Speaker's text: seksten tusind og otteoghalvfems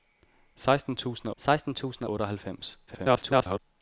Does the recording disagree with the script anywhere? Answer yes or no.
yes